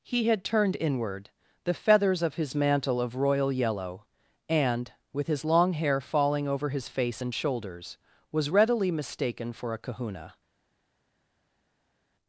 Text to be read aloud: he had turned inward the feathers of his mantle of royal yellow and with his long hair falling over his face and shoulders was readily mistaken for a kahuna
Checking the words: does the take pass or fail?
pass